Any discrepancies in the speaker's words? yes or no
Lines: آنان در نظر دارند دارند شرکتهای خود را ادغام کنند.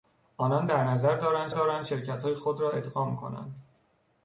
no